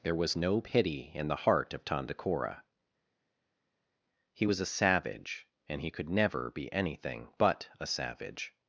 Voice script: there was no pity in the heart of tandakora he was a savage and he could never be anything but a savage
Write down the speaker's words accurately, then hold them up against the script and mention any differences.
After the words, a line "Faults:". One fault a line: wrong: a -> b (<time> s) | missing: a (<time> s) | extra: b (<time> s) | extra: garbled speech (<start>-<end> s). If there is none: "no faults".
there was no pity in the heart of tandakora he was a savage and he could never be anything but a savage
Faults:
no faults